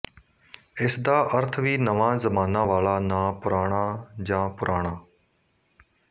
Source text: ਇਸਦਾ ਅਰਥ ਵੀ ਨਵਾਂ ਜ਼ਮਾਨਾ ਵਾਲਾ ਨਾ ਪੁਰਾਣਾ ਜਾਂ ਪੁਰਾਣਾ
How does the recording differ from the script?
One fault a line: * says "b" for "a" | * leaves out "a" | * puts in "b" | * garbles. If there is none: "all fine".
all fine